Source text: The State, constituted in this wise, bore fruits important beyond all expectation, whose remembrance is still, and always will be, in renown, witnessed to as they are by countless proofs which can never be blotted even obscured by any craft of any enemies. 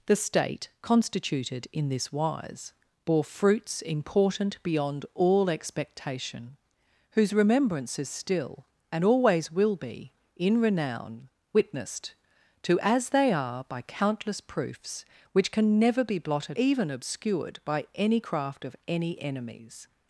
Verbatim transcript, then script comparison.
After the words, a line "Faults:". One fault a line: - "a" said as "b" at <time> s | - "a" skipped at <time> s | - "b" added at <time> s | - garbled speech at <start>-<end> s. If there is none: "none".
The State, constituted in this wise, bore fruits important beyond all expectation, whose remembrance is still, and always will be, in renown, witnessed to as they are by countless proofs which can never be blotted even obscured by any craft of any enemies.
Faults:
none